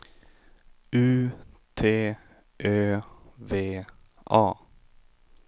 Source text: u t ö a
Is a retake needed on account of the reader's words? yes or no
yes